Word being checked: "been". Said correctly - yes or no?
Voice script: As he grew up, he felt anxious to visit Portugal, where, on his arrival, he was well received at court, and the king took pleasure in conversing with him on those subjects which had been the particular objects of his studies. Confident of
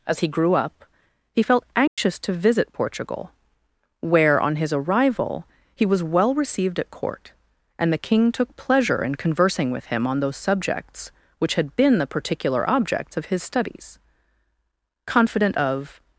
yes